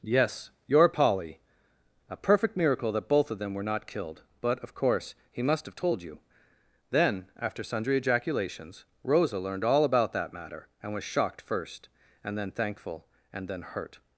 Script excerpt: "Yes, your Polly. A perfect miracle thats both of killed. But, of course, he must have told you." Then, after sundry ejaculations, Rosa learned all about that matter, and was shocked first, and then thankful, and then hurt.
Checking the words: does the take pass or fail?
fail